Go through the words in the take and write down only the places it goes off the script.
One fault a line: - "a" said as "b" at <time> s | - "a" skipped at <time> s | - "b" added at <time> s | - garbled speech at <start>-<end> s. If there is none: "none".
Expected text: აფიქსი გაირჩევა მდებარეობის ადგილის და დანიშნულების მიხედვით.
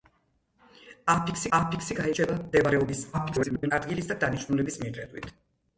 - "აფიქსი" added at 1.6 s
- garbled speech at 3.1-3.7 s